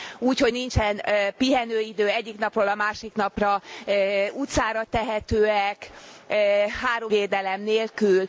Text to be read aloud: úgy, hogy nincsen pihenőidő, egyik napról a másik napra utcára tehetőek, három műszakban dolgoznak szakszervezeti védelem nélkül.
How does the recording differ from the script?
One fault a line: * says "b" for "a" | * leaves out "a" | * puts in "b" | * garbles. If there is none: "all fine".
* leaves out "műszakban dolgoznak szakszervezeti"